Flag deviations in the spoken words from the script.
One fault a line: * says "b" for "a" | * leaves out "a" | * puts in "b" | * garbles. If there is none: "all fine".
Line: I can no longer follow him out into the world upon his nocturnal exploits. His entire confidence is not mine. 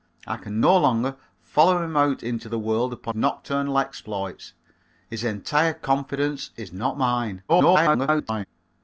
* leaves out "his"
* garbles